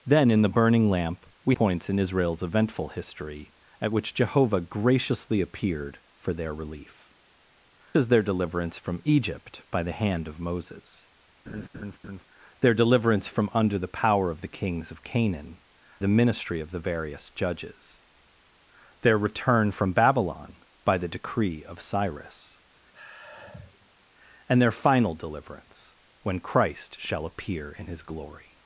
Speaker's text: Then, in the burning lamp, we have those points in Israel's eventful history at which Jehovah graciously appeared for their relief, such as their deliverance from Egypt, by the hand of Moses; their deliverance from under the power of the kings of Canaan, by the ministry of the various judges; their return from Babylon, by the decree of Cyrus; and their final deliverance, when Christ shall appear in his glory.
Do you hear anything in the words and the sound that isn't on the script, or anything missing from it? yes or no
yes